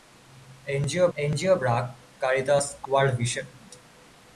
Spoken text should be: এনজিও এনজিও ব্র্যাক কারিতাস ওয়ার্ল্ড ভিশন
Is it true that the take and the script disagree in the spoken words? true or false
false